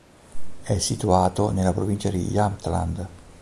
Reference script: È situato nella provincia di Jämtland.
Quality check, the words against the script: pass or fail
pass